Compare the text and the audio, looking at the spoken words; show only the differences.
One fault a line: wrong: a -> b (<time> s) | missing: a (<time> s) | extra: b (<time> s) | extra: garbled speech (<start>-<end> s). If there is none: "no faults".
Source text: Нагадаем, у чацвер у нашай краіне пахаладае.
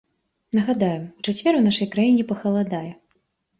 no faults